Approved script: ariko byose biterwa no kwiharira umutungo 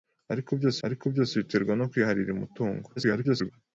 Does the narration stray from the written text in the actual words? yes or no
yes